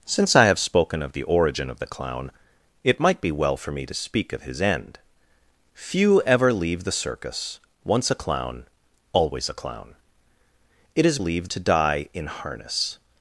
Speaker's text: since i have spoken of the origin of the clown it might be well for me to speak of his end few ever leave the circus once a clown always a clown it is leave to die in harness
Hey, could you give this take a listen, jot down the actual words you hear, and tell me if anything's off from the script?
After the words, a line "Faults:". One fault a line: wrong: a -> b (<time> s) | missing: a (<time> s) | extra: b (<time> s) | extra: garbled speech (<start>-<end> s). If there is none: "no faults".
since i have spoken of the origin of the clown it might be well for me to speak of his end few ever leave the circus once a clown always a clown it is leave to die in harness
Faults:
no faults